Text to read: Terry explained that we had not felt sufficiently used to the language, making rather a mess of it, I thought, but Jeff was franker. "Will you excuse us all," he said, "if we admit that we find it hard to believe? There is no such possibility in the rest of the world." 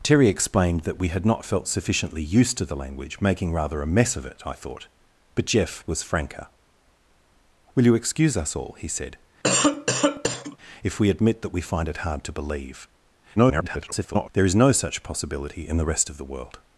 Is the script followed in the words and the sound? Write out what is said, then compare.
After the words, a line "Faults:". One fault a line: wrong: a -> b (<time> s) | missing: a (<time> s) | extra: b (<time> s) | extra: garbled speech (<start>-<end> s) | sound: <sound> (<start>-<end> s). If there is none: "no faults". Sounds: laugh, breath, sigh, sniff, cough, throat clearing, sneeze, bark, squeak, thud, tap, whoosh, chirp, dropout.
Terry explained that we had not felt sufficiently used to the language, making rather a mess of it, I thought, but Jeff was franker. "Will you excuse us all," he said, "if we admit that we find it hard to believe? [garbled] There is no such possibility in the rest of the world."
Faults:
sound: cough (9.4-10.6 s)
extra: garbled speech (13.4-14.3 s)